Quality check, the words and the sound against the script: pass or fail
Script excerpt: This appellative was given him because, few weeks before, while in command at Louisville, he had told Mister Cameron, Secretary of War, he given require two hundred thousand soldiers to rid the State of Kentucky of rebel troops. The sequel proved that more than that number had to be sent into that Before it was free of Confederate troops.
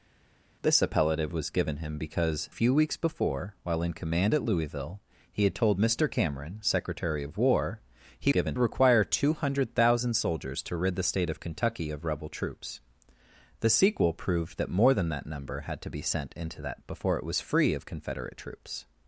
pass